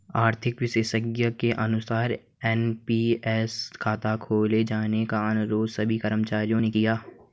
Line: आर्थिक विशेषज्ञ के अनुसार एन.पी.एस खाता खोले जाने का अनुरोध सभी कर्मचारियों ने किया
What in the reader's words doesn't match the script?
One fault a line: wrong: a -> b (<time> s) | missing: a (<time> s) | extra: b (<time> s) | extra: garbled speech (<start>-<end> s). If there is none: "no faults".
no faults